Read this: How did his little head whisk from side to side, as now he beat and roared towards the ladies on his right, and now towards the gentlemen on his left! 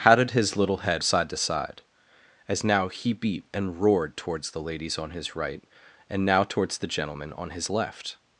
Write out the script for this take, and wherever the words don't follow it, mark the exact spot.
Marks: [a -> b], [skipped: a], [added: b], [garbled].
How did his little head [skipped: whisk from] side to side, as now he beat and roared towards the ladies on his right, and now towards the gentlemen on his left!